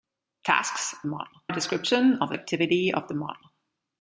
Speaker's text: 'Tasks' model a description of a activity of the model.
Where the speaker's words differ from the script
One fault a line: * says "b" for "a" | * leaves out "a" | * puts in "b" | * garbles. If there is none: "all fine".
all fine